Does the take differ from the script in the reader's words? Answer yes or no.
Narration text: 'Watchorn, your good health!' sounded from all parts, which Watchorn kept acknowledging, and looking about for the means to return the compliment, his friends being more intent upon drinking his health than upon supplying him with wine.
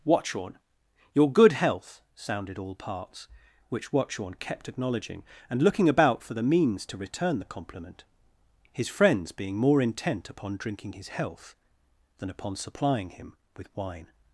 yes